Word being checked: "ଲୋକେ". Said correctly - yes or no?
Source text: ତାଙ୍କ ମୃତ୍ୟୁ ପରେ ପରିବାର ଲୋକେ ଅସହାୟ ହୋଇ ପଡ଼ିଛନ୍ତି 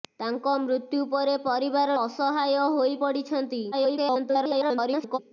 no